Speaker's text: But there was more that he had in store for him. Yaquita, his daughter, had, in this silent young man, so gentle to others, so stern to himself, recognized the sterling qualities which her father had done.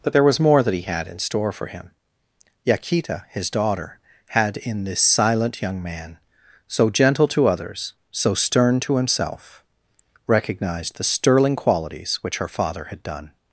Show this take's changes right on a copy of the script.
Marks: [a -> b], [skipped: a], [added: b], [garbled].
But there was more that he had in store for him. Yaquita, his daughter, had, in this silent young man, so gentle to others, so stern to himself, recognized the sterling qualities which her father had done.